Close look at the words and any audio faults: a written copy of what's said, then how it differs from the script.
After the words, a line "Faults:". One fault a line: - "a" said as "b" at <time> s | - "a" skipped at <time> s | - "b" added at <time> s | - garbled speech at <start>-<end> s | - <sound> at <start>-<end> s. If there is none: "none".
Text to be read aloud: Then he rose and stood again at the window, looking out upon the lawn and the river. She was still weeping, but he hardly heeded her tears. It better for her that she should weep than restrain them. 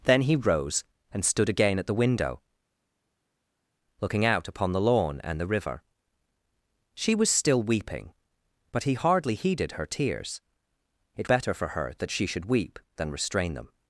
Then he rose and stood again at the window, looking out upon the lawn and the river. She was still weeping, but he hardly heeded her tears. It better for her that she should weep than restrain them.
Faults:
none